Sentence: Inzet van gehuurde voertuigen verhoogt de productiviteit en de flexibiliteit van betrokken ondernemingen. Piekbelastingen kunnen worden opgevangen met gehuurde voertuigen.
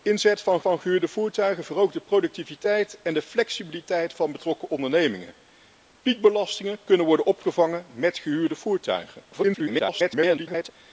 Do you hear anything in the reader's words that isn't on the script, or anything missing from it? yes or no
yes